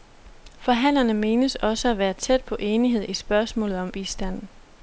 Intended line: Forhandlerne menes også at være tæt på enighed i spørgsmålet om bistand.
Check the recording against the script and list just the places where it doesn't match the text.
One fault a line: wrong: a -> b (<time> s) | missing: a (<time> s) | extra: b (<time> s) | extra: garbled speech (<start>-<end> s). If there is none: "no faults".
no faults